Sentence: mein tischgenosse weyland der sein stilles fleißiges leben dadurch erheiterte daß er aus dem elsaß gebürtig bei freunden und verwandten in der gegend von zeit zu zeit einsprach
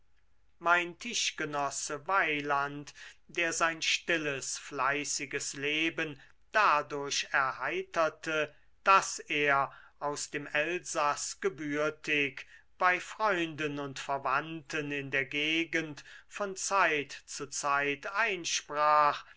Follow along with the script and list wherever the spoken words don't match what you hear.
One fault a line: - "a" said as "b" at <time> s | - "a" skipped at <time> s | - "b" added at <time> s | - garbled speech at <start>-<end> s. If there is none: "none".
none